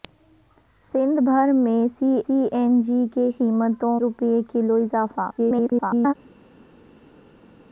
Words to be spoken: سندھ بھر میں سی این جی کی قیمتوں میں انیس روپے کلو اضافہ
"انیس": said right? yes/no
no